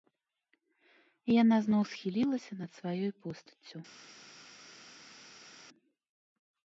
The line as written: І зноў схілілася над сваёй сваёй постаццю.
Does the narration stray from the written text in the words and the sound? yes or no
yes